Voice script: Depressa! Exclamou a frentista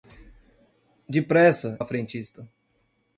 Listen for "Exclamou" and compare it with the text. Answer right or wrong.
wrong